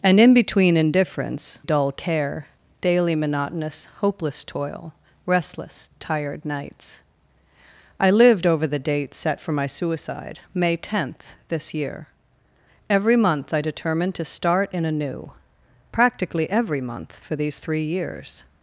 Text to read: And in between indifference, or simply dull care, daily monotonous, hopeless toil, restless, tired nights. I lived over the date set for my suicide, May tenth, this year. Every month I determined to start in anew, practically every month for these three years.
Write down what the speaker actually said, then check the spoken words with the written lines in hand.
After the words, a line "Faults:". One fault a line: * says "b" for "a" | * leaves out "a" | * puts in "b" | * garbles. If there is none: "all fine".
And in between indifference, dull care, daily monotonous, hopeless toil, restless, tired nights. I lived over the date set for my suicide, May tenth, this year. Every month I determined to start in anew, practically every month for these three years.
Faults:
* leaves out "or simply"